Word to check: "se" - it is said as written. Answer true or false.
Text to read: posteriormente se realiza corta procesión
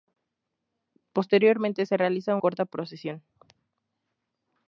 true